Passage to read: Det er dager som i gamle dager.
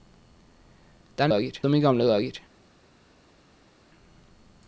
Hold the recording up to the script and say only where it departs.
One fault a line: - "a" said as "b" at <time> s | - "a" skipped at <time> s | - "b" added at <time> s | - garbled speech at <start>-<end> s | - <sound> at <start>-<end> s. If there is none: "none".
none